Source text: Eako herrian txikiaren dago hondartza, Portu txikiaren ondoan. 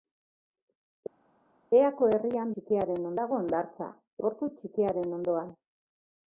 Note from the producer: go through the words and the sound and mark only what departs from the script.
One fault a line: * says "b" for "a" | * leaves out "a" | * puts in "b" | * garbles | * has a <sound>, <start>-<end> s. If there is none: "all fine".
all fine